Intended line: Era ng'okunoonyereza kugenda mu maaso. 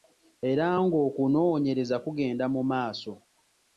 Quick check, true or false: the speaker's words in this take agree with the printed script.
true